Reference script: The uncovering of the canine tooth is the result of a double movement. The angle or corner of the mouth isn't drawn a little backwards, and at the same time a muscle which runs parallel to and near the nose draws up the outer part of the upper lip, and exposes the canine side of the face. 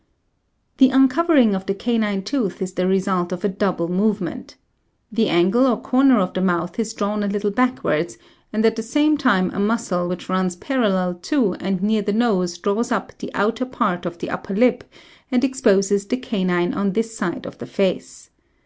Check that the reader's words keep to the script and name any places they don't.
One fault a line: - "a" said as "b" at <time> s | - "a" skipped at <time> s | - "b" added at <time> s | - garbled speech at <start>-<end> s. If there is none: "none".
- "isn't" said as "is" at 6.8 s
- "on this" added at 16.7 s